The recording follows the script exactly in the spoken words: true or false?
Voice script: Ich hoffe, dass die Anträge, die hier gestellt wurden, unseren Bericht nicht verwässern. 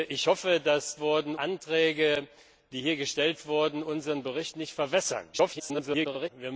false